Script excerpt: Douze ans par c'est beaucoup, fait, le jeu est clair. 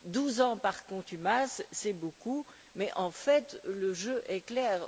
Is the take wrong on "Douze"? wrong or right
right